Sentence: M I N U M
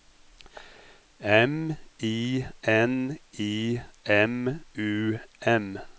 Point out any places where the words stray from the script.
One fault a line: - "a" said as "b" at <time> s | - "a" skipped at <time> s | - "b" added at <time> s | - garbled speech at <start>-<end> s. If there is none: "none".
- "I M" added at 3.4 s